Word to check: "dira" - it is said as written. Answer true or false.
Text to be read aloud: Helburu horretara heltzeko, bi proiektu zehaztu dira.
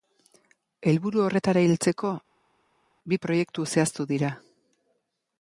true